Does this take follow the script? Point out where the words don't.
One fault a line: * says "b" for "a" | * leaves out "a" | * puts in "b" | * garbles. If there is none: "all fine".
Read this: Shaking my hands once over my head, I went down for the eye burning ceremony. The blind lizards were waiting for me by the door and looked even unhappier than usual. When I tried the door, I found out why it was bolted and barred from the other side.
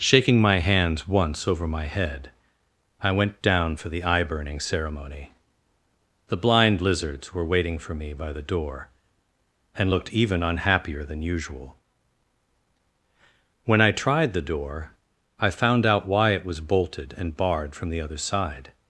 all fine